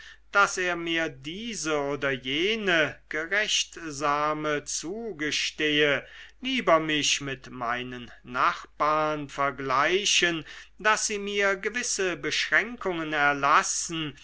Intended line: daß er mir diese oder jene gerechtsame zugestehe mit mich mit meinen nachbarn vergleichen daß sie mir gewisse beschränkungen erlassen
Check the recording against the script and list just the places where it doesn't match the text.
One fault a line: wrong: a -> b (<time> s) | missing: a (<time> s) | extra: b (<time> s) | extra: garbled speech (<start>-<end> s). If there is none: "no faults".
wrong: mit -> lieber (6.4 s)